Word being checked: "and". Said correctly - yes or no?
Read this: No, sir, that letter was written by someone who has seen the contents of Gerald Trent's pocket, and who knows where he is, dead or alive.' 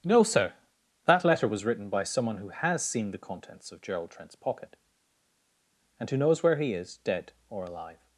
yes